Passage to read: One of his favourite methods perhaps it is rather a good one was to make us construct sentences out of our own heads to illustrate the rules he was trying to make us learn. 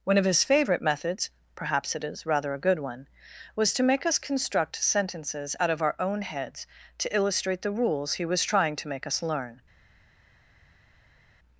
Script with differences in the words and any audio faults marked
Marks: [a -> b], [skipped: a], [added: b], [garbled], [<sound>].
One of his favourite methods perhaps it is rather a good one was to make us construct sentences out of our own heads to illustrate the rules he was trying to make us learn.